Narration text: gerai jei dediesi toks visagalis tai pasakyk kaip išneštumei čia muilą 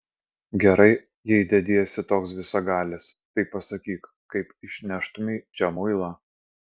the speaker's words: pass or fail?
pass